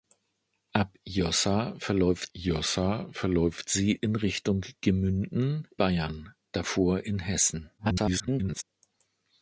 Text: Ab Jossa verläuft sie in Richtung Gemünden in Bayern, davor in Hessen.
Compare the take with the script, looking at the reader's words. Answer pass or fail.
fail